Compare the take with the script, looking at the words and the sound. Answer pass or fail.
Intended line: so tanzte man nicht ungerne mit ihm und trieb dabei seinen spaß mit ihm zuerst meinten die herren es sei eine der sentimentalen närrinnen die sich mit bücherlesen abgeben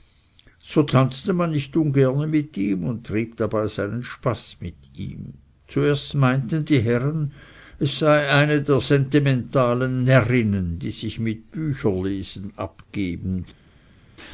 pass